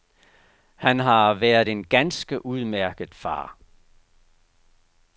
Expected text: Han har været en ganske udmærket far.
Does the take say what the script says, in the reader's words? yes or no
yes